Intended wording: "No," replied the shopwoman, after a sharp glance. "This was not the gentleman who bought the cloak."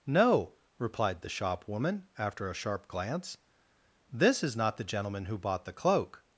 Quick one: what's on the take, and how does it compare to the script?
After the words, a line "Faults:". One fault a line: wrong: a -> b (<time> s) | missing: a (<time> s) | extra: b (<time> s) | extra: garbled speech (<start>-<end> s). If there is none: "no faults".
"No," replied the shopwoman, after a sharp glance. "This is not the gentleman who bought the cloak."
Faults:
wrong: was -> is (4.4 s)